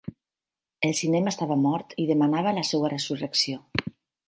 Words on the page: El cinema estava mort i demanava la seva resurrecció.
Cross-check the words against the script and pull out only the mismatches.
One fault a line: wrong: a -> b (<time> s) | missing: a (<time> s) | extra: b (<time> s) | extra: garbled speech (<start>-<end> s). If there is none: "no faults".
no faults